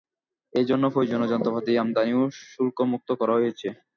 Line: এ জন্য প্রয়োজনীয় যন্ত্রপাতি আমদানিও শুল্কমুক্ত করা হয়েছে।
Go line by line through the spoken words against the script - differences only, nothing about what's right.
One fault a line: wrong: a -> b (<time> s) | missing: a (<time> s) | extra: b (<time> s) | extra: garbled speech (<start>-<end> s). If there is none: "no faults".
no faults